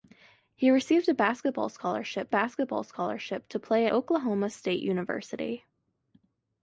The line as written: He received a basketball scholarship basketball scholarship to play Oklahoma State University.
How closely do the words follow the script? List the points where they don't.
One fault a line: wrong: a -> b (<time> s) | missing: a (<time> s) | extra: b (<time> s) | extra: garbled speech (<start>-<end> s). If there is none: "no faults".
no faults